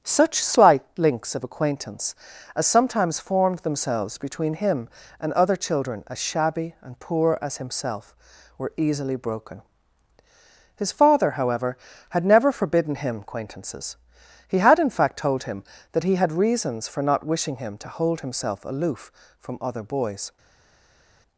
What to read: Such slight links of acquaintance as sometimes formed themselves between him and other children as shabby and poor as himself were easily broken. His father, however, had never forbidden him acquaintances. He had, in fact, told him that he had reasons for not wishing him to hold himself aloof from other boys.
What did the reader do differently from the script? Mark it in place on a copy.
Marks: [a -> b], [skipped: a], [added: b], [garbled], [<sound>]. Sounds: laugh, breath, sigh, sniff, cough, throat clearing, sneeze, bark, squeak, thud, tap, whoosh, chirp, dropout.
Such slight links of acquaintance as sometimes formed themselves between him and other children as shabby and poor as himself were easily broken. His father, however, had never forbidden him acquaintances. He had, in fact, told him that he had reasons for not wishing him to hold himself aloof from other boys.